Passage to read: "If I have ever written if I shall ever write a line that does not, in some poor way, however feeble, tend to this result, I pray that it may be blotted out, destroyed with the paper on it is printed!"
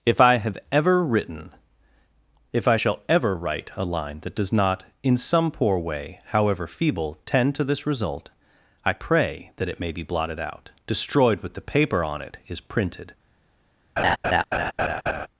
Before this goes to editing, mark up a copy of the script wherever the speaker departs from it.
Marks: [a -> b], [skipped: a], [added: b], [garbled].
"If I have ever written if I shall ever write a line that does not, in some poor way, however feeble, tend to this result, I pray that it may be blotted out, destroyed with the paper on it is printed!"